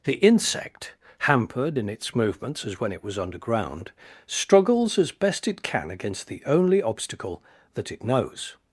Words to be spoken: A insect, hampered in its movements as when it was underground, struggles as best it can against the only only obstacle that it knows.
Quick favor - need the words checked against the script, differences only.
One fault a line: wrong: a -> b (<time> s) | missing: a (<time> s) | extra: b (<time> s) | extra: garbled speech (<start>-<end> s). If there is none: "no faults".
wrong: A -> The (0.0 s)
missing: only (6.8 s)